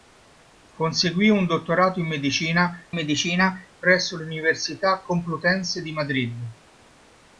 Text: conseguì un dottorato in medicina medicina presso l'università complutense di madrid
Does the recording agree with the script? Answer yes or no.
yes